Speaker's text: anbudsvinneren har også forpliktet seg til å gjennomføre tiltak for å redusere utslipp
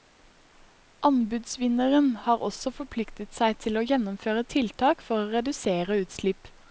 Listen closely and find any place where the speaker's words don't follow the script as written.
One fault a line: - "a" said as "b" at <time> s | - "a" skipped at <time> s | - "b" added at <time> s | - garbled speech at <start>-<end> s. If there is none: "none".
none